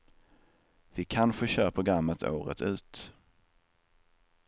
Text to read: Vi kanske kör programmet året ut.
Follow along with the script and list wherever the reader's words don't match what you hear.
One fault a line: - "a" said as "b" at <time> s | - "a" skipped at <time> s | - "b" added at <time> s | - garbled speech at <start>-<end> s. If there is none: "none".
none